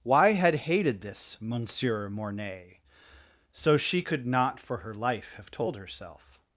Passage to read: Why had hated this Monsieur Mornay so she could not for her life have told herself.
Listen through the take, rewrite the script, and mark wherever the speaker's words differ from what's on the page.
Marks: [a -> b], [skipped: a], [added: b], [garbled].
Why had hated this Monsieur Mornay so she could not for her life have told herself.